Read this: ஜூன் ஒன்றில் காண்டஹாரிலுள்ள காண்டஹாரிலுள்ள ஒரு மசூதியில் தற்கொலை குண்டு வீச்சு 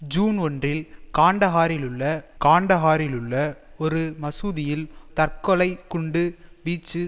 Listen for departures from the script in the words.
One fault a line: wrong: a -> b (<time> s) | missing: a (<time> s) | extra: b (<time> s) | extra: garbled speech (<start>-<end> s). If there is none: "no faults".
no faults